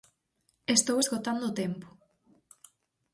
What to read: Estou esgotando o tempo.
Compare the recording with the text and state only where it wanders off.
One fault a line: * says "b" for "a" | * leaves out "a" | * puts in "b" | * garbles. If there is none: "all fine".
all fine